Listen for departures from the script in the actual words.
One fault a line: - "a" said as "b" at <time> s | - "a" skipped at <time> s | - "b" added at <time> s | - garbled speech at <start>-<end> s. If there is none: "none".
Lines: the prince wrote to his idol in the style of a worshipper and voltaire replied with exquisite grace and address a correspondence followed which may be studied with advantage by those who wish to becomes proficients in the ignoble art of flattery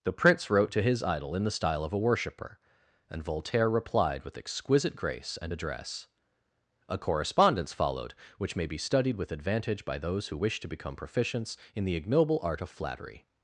- "becomes" said as "become" at 10.7 s